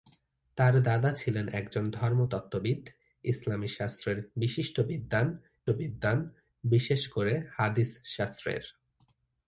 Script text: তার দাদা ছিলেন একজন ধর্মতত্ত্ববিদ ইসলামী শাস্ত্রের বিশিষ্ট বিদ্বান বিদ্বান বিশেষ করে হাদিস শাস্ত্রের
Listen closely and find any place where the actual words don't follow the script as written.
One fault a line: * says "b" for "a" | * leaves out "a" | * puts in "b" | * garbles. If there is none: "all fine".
all fine